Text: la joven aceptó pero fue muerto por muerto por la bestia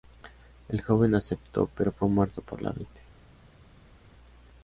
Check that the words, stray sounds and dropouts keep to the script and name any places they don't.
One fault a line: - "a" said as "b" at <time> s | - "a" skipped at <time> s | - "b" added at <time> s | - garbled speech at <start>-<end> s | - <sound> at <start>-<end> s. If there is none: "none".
- "la" said as "el" at 0.7 s
- "muerto por" skipped at 2.6 s